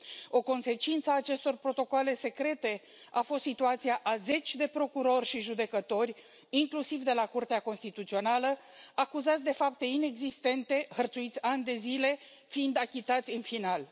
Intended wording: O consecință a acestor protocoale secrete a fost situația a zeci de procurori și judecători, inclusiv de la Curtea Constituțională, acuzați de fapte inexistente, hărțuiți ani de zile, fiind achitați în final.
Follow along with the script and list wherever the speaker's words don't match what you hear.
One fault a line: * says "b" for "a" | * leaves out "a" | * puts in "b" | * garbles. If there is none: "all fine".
all fine